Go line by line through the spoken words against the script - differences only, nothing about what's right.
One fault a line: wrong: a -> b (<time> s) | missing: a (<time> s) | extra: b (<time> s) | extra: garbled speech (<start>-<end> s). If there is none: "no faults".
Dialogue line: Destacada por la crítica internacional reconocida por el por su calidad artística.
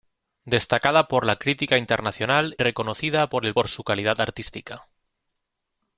no faults